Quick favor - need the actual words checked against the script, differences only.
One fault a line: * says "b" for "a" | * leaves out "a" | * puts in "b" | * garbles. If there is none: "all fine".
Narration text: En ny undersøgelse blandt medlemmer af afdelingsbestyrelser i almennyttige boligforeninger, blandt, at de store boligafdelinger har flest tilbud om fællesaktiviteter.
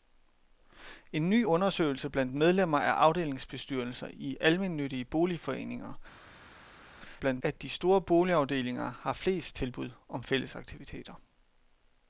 all fine